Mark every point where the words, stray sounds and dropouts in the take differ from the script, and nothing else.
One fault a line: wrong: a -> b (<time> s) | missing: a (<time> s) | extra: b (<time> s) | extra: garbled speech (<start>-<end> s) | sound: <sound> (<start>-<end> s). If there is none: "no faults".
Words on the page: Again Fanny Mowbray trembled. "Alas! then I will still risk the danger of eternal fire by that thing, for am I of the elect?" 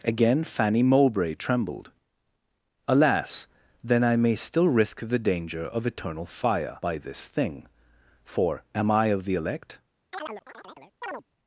wrong: will -> may (4.2 s)
wrong: that -> this (7.0 s)
sound: chirp (10.1-11.2 s)